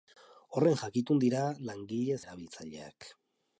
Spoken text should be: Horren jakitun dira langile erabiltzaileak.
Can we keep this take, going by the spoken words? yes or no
yes